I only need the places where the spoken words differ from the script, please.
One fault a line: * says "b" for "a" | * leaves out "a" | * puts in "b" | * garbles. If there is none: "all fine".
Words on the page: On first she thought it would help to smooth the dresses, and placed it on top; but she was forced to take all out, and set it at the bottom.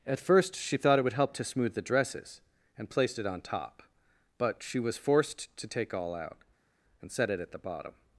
* says "At" for "On"